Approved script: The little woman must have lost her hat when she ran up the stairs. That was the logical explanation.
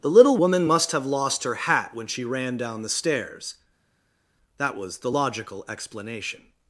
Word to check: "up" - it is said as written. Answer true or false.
false